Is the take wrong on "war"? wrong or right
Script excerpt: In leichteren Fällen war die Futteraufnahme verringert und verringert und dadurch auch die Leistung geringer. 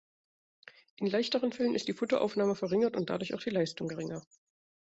wrong